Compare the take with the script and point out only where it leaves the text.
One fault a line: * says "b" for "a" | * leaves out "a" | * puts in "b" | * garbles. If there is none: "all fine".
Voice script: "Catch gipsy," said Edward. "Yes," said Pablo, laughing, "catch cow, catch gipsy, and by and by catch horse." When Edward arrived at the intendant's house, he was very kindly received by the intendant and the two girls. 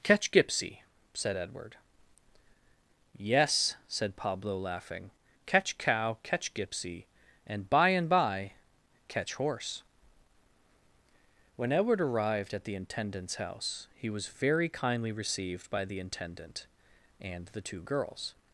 all fine